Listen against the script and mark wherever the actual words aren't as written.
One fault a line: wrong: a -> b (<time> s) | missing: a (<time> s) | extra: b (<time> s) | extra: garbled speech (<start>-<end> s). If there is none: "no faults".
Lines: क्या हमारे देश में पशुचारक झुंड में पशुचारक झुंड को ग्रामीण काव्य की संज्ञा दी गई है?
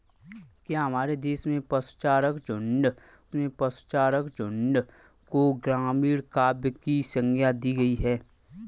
no faults